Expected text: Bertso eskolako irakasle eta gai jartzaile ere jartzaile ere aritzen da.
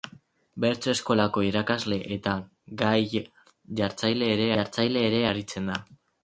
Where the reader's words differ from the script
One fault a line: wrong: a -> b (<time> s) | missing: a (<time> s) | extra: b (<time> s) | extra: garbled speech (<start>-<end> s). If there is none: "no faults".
no faults